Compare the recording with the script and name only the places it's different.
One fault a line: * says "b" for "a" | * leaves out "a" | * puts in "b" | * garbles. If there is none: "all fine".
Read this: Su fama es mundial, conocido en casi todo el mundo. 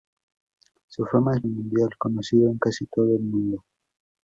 all fine